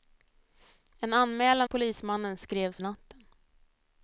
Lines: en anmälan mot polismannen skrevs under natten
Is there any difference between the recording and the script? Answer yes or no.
yes